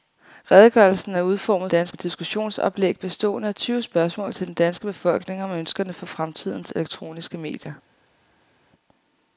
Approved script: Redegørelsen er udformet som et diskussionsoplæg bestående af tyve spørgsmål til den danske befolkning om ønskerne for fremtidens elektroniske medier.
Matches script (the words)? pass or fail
fail